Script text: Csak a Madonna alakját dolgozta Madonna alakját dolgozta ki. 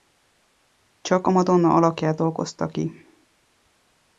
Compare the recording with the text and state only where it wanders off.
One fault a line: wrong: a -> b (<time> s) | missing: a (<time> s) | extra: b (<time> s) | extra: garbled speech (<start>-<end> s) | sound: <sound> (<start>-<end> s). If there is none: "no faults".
missing: Madonna alakját dolgozta (2.7 s)